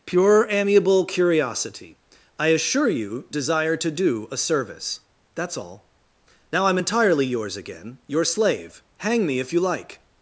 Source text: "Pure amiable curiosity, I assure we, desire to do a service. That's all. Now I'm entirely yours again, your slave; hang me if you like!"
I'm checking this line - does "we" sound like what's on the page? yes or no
no